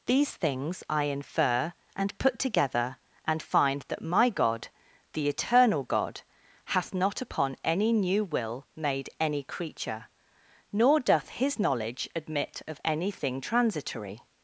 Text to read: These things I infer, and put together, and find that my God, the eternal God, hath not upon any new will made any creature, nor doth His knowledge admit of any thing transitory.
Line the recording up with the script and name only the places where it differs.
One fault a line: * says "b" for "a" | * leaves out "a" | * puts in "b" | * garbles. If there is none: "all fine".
all fine